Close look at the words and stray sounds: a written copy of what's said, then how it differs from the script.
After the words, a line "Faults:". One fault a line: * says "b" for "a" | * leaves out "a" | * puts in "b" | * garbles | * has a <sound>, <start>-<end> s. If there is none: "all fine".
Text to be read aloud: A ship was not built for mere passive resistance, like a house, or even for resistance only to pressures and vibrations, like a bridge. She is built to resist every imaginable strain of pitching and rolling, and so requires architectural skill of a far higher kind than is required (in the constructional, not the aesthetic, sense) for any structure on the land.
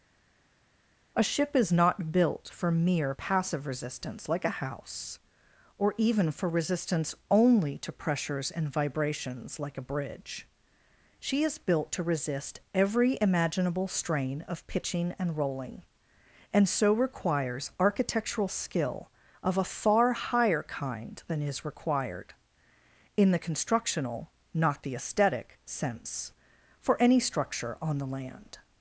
A ship is not built for mere passive resistance, like a house, or even for resistance only to pressures and vibrations, like a bridge. She is built to resist every imaginable strain of pitching and rolling, and so requires architectural skill of a far higher kind than is required (in the constructional, not the aesthetic, sense) for any structure on the land.
Faults:
* says "is" for "was"